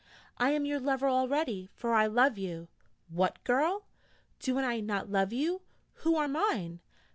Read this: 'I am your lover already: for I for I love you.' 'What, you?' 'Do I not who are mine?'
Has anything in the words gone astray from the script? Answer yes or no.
yes